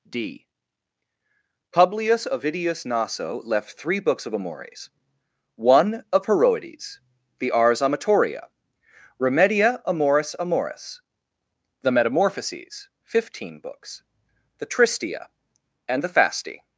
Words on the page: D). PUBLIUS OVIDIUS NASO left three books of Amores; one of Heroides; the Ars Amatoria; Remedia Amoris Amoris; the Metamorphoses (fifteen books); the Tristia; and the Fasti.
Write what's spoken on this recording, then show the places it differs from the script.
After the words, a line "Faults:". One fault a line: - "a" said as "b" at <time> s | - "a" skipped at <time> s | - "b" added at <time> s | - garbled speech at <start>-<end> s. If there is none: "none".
D). PUBLIUS OVIDIUS NASO left three books of Amores; one of Heroides; the Ars Amatoria; Remedia Amoris Amoris; the Metamorphoses (fifteen books); the Tristia; and the Fasti.
Faults:
none